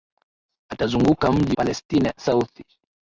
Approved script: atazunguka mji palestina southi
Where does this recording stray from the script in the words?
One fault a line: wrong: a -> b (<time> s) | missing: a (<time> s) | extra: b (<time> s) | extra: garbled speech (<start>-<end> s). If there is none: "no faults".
no faults